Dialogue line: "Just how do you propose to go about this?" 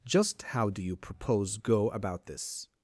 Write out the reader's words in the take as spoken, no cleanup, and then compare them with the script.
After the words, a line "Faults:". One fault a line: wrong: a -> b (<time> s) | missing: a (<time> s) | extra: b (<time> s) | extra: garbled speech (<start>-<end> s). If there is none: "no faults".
"Just how do you propose go about this?"
Faults:
missing: to (1.6 s)